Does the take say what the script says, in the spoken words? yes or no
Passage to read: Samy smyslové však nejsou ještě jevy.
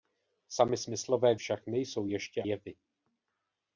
yes